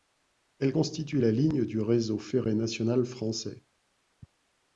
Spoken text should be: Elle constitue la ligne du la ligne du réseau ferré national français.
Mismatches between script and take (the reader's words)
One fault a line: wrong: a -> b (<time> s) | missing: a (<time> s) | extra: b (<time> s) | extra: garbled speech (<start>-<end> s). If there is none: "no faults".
missing: la ligne du (1.8 s)